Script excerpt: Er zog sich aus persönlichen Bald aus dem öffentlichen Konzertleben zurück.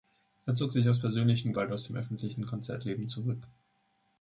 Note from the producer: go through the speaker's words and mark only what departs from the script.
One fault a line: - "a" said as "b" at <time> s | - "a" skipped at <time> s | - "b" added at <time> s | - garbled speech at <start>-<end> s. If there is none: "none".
none